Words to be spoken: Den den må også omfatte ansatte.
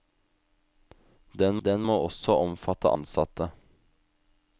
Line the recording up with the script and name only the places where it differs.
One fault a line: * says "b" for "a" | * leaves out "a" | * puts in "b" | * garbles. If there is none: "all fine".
all fine